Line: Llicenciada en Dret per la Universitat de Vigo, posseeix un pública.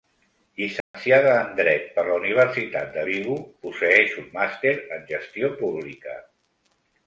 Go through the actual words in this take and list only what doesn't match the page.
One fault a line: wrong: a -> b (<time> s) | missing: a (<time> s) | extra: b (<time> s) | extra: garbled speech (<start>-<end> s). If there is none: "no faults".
extra: màster en gestió (4.4 s)